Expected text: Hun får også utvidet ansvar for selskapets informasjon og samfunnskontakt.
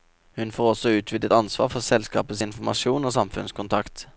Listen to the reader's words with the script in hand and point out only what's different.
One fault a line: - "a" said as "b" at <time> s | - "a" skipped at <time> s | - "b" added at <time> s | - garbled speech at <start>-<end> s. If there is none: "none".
none